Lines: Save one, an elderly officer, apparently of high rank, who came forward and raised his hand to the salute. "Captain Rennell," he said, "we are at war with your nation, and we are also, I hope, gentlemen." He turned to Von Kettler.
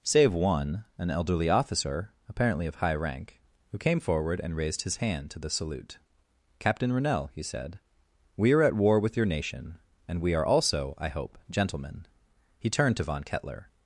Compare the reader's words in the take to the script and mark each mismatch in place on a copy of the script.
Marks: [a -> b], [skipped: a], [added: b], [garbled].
Save one, an elderly officer, apparently of high rank, who came forward and raised his hand to the salute. "Captain Rennell," he said, "we are at war with your nation, and we are also, I hope, gentlemen." He turned to Von Kettler.